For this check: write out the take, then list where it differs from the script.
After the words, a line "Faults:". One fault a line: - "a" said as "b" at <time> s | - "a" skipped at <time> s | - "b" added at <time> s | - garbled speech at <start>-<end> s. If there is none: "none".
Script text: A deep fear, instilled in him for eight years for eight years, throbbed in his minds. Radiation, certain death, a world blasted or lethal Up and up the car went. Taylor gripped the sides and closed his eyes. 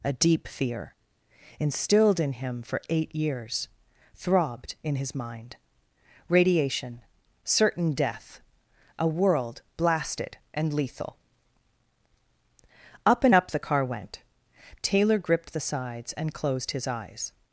A deep fear, instilled in him for eight years, throbbed in his mind. Radiation, certain death, a world blasted and lethal Up and up the car went. Taylor gripped the sides and closed his eyes.
Faults:
- "for eight years" skipped at 3.7 s
- "minds" said as "mind" at 5.1 s
- "or" said as "and" at 10.5 s